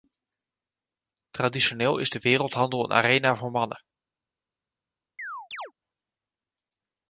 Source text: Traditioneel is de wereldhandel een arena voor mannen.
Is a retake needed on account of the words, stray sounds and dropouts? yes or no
yes